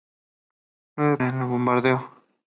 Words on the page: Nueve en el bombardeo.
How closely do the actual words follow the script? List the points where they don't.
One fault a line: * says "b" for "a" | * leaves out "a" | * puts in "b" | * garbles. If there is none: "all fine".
all fine